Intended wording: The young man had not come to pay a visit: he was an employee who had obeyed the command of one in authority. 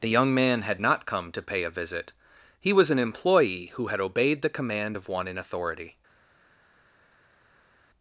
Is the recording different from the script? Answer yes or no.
no